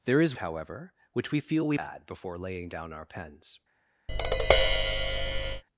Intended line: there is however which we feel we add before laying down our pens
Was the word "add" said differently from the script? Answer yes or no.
no